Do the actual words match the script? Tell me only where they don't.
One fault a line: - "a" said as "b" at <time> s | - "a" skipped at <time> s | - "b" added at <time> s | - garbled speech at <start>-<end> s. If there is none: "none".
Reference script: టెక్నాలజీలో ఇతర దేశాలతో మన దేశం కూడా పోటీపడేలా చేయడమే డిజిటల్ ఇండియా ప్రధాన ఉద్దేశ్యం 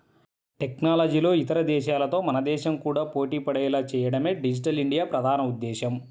none